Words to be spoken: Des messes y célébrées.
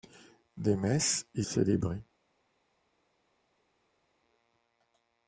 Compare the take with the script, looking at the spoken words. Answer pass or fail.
pass